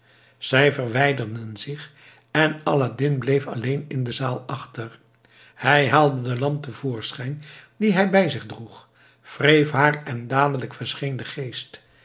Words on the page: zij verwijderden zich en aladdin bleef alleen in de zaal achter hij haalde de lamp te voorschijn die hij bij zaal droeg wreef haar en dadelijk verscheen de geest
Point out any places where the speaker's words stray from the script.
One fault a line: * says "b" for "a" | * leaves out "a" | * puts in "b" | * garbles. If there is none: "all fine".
* says "zich" for "zaal"